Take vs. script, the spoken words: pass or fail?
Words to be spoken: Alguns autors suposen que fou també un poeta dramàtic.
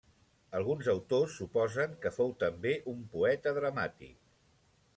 pass